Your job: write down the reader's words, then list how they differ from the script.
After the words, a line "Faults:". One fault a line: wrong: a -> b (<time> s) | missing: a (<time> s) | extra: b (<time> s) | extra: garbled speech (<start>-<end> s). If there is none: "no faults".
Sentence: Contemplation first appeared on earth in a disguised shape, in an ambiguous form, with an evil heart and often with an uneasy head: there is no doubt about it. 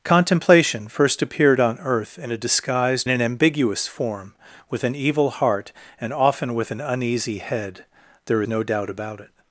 Contemplation first appeared on earth in a disguised an ambiguous form, with an evil heart and often with an uneasy head: there no doubt about it.
Faults:
missing: shape in (3.1 s)
missing: is (8.4 s)